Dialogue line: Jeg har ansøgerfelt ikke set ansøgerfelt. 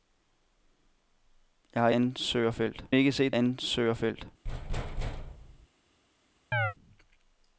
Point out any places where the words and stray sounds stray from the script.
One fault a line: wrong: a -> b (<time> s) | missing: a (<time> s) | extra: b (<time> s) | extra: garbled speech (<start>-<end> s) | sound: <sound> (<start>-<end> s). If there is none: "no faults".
sound: thud (4.4-5.7 s)
sound: chirp (6.5-6.7 s)